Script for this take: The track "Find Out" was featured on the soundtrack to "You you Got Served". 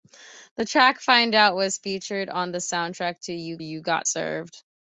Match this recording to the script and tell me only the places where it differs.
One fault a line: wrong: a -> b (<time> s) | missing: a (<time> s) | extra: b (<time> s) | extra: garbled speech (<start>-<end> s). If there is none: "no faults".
no faults